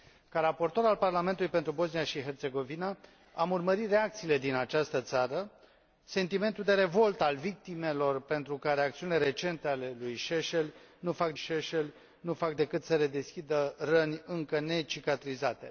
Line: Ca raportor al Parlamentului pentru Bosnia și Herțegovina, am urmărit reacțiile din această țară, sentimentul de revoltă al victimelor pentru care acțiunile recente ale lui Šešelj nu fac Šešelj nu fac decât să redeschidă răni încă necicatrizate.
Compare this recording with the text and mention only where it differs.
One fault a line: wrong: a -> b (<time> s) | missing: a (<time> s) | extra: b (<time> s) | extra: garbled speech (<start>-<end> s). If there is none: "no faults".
no faults